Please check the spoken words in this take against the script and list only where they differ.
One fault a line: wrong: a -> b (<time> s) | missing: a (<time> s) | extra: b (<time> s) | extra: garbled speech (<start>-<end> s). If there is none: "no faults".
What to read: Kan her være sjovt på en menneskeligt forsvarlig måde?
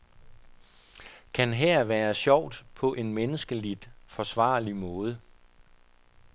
no faults